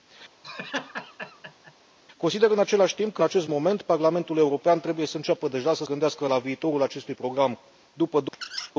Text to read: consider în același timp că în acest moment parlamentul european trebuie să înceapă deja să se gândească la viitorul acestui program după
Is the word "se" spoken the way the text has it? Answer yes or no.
no